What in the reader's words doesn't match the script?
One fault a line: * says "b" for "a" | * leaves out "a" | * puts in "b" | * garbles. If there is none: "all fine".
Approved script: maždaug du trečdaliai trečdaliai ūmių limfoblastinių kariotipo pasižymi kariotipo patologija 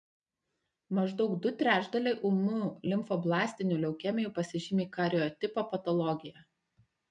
* leaves out "trečdaliai"
* says "leukemijų" for "kariotipo"